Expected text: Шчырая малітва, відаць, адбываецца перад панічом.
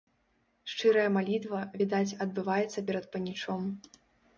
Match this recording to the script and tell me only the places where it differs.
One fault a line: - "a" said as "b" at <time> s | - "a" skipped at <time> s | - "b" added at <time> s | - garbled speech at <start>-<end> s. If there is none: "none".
none